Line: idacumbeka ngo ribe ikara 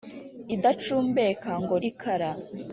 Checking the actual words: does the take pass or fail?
fail